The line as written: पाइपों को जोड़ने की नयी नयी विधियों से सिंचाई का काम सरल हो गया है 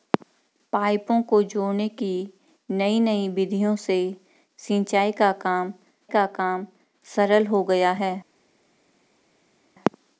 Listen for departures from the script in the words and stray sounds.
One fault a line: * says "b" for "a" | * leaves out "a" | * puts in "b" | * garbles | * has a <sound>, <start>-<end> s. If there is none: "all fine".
* puts in "का काम"